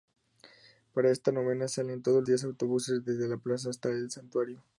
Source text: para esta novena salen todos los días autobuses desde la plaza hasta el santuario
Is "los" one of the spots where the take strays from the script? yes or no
yes